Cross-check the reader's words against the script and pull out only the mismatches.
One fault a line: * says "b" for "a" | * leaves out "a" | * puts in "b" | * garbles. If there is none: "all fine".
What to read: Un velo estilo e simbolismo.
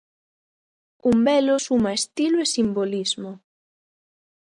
* puts in "suma"